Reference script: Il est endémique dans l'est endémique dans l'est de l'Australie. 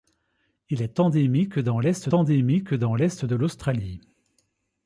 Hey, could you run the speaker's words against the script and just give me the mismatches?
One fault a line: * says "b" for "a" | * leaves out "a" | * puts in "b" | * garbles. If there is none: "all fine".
all fine